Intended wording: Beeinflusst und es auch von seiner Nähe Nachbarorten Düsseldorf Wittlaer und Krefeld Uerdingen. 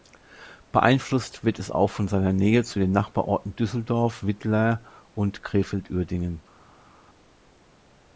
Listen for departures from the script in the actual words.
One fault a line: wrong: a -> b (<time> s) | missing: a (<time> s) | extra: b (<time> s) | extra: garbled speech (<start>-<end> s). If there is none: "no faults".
wrong: und -> wird (1.4 s)
extra: zu den (2.6 s)